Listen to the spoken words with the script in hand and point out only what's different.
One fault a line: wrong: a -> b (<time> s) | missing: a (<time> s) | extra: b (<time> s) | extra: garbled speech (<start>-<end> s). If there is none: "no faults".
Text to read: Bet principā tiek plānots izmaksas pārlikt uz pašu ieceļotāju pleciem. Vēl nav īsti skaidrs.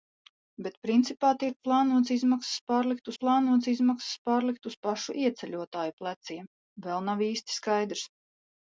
extra: plānots izmaksas pārlikt (3.2 s)